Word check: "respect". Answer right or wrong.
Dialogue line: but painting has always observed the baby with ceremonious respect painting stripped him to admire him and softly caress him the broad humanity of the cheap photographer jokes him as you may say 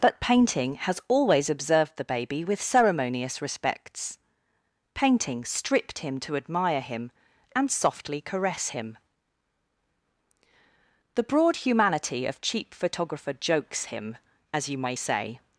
wrong